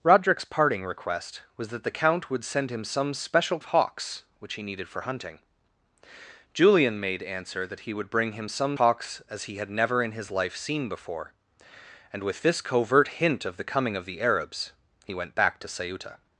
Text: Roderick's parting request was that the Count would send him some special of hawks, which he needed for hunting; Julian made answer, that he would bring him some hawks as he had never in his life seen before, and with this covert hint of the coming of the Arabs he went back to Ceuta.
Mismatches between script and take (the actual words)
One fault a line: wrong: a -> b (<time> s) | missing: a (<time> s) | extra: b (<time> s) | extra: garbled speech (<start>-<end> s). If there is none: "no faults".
no faults